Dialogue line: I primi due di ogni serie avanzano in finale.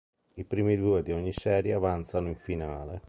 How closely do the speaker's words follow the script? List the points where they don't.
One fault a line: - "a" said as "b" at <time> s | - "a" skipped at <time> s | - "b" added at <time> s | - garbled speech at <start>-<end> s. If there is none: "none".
none